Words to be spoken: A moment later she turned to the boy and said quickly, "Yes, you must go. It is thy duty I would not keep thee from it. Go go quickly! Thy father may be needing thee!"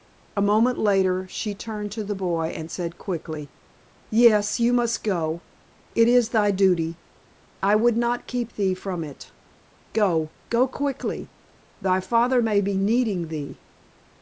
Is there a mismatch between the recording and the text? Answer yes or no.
no